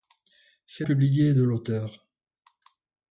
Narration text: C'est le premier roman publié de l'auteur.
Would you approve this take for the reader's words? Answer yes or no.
no